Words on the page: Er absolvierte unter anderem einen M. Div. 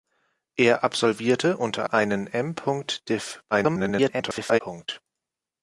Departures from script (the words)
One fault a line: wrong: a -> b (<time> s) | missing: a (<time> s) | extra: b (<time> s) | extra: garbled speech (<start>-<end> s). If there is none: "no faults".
missing: anderem (1.8 s)
extra: garbled speech (3.5-4.6 s)